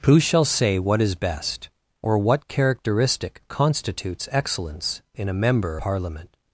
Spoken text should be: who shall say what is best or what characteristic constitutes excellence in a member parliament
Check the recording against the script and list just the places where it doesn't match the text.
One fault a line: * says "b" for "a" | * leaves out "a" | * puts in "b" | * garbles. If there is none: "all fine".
all fine